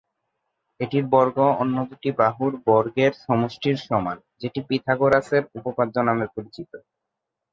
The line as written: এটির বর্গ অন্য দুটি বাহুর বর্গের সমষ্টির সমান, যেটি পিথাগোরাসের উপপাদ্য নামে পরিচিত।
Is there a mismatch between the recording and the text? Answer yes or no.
no